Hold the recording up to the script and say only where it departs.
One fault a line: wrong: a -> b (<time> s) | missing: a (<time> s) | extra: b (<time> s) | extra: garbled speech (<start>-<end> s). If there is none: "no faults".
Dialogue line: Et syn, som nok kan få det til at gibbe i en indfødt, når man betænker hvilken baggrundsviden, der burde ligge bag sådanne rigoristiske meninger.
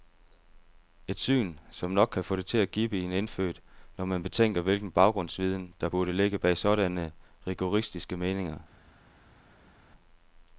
no faults